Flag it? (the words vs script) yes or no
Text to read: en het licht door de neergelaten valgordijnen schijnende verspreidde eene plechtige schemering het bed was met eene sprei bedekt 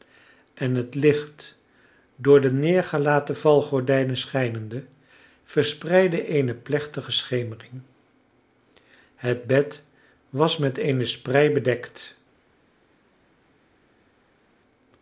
no